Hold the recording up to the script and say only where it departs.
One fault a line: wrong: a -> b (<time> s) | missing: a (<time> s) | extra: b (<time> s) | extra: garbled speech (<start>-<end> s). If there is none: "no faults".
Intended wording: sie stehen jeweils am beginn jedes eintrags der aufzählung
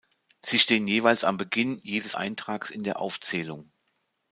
extra: in (2.7 s)